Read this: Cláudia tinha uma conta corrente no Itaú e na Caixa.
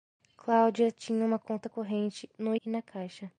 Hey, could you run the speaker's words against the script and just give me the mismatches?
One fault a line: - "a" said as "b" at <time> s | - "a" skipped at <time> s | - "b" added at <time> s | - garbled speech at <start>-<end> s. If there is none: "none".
- "Itaú" skipped at 2.5 s